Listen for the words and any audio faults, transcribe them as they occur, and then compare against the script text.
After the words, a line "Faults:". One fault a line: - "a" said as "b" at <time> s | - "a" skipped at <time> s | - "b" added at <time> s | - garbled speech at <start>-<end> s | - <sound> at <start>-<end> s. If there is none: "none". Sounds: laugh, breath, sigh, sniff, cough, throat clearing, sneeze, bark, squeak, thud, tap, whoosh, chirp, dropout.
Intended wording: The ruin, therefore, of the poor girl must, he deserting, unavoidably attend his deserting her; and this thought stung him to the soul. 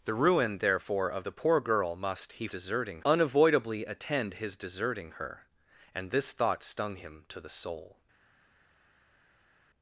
The ruin, therefore, of the poor girl must, he deserting, unavoidably attend his deserting her; and this thought stung him to the soul.
Faults:
none